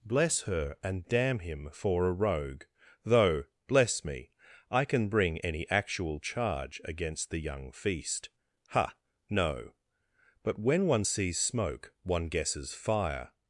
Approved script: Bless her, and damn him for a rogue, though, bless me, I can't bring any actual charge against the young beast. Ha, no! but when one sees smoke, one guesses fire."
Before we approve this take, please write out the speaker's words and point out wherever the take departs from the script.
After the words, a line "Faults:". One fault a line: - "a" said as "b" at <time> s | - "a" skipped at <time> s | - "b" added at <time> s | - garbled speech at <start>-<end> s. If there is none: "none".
Bless her, and damn him for a rogue, though, bless me, I can bring any actual charge against the young feast. Ha, no! but when one sees smoke, one guesses fire."
Faults:
- "can't" said as "can" at 4.8 s
- "beast" said as "feast" at 7.7 s